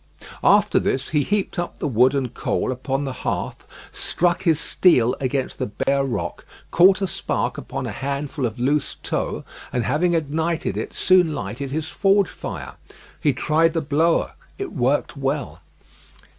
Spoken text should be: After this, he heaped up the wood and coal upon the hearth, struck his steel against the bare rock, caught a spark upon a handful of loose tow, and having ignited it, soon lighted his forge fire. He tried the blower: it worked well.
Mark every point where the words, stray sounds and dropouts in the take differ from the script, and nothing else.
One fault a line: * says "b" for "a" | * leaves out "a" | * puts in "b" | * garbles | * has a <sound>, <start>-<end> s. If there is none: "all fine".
* has a dropout, 5.8-5.9 s